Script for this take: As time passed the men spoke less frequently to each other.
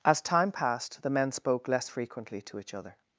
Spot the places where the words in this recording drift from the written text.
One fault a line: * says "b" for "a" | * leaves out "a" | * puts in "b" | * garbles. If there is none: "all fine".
all fine